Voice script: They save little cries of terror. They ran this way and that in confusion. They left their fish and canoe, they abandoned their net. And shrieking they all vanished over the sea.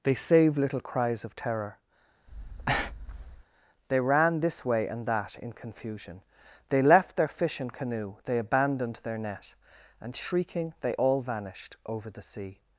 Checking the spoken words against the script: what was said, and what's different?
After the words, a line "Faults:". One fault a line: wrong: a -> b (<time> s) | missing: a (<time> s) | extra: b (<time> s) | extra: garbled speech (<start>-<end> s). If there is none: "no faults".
They save little cries of terror. They ran this way and that in confusion. They left their fish and canoe, they abandoned their net. And shrieking they all vanished over the sea.
Faults:
no faults